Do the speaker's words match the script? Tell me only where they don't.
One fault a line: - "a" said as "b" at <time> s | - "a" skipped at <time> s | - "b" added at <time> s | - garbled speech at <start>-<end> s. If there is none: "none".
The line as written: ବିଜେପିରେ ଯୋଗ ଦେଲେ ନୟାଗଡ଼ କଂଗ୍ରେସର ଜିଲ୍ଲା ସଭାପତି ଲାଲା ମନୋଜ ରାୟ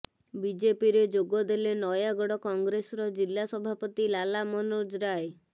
none